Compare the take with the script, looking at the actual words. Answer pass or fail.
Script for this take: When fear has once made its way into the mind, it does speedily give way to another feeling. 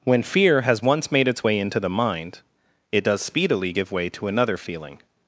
pass